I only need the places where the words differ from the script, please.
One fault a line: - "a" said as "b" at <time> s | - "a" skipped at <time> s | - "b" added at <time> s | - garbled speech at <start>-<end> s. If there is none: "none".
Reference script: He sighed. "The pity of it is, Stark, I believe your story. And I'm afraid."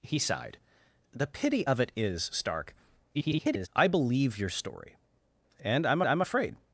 - garbled speech at 3.1-3.7 s
- "I'm" added at 6.0 s